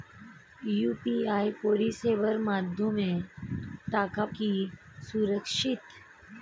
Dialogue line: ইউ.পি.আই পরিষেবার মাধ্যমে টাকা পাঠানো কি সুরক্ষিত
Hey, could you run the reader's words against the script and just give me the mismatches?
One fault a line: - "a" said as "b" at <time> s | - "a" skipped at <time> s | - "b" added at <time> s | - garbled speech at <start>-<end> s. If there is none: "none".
- "পাঠানো" skipped at 4.2 s